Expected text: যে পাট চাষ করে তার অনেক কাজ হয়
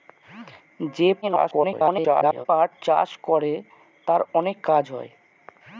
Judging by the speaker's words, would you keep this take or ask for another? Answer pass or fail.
fail